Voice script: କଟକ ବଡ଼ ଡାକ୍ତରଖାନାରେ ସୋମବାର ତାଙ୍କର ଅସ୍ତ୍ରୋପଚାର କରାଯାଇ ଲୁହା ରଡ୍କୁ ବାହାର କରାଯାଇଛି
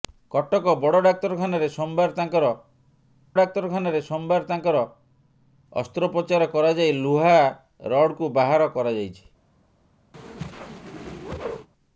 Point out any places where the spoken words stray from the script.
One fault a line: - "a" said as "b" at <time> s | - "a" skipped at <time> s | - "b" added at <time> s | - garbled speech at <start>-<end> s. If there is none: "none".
- "ଡାକ୍ତରଖାନାରେ ସୋମବାର ତାଙ୍କର" added at 3.4 s